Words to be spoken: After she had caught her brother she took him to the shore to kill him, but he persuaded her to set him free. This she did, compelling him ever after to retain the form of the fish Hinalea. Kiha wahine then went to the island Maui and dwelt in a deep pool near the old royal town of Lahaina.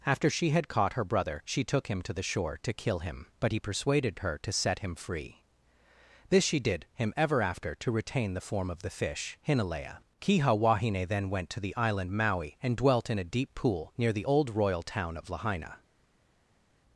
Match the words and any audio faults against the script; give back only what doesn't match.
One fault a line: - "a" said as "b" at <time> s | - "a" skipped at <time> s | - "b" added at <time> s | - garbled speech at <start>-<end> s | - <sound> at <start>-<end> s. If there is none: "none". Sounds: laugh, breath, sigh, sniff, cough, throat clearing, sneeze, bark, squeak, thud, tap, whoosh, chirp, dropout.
- "compelling" skipped at 6.8 s